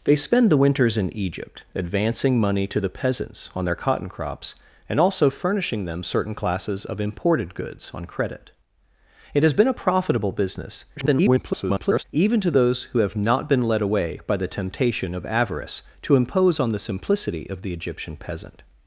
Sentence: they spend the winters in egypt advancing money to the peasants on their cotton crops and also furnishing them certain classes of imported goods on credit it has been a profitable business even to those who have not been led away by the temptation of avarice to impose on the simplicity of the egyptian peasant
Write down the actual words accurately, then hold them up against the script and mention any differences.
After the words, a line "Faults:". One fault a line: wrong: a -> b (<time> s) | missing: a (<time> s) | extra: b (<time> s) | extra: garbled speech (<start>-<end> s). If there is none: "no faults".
they spend the winters in egypt advancing money to the peasants on their cotton crops and also furnishing them certain classes of imported goods on credit it has been a profitable business [garbled] even to those who have not been led away by the temptation of avarice to impose on the simplicity of the egyptian peasant
Faults:
extra: garbled speech (11.0-12.0 s)